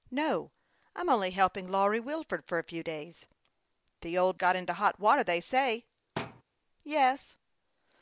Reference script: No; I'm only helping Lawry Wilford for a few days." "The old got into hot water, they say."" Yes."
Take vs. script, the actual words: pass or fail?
pass